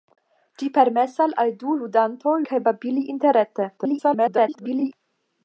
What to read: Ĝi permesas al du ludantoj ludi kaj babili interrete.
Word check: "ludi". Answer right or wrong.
wrong